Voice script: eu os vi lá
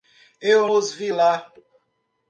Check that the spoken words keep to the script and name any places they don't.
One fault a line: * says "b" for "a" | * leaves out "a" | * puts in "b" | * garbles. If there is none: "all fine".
all fine